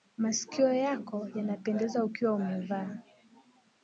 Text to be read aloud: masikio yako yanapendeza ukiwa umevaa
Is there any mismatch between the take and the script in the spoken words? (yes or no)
no